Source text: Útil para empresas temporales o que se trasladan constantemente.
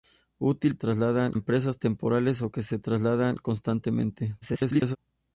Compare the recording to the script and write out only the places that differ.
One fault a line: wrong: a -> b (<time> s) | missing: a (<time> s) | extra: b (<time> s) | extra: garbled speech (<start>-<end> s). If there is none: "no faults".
wrong: para -> trasladan (0.8 s)
extra: garbled speech (4.4-5.0 s)